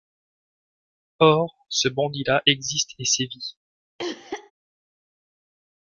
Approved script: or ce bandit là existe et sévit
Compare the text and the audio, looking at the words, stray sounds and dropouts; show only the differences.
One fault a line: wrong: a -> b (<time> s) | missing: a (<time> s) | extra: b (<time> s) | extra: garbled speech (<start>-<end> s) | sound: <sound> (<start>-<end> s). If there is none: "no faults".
sound: cough (4.0-4.5 s)